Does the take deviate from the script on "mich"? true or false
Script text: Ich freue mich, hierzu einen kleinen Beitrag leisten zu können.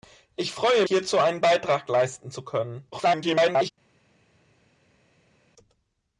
true